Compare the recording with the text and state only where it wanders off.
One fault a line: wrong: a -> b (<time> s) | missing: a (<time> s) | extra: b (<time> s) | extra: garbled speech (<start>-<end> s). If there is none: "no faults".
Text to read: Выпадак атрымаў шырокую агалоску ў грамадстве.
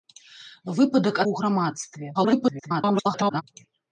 missing: атрымаў шырокую агалоску (1.2 s)
extra: garbled speech (2.1-3.4 s)